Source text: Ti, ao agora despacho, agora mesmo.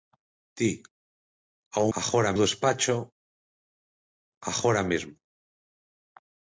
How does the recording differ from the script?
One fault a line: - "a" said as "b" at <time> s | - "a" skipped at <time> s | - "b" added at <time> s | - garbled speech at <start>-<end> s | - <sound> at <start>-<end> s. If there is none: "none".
none